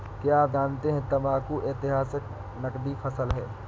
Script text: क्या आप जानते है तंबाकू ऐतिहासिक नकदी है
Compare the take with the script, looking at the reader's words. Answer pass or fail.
fail